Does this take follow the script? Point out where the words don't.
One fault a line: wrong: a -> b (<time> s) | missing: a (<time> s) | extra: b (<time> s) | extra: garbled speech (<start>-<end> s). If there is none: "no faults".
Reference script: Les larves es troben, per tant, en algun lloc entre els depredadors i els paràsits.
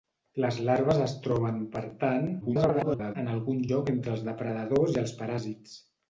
extra: garbled speech (2.4-3.2 s)